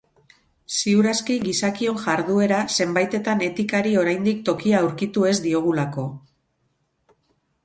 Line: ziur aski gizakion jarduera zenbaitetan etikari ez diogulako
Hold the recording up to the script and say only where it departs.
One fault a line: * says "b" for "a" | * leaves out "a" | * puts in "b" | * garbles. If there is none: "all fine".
* puts in "oraindik tokia aurkitu"